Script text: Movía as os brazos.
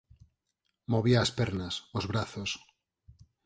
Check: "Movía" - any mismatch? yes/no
no